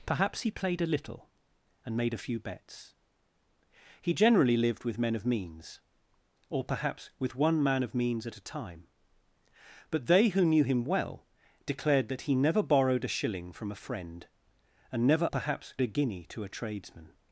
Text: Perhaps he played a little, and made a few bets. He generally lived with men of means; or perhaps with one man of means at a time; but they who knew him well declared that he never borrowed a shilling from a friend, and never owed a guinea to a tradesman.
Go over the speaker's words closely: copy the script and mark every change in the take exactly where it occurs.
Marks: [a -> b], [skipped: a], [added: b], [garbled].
Perhaps he played a little, and made a few bets. He generally lived with men of means; or perhaps with one man of means at a time; but they who knew him well declared that he never borrowed a shilling from a friend, and never [owed -> perhaps] a guinea to a tradesman.